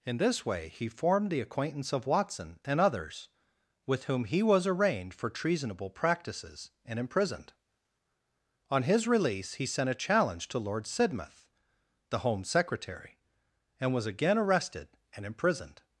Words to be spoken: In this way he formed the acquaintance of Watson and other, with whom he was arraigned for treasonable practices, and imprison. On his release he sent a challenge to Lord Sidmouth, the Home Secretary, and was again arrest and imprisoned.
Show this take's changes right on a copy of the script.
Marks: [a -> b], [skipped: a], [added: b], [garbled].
In this way he formed the acquaintance of Watson and [other, -> others] with whom he was arraigned for treasonable practices, and [imprison. -> imprisoned] On his release he sent a challenge to Lord Sidmouth, the Home Secretary, and was again [arrest -> arrested] and imprisoned.